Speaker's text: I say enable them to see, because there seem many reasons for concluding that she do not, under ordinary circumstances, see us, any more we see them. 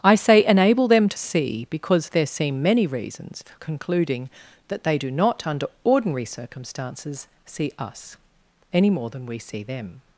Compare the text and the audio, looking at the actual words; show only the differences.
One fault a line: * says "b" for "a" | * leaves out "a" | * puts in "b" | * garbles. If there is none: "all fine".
* says "they" for "she"
* puts in "than"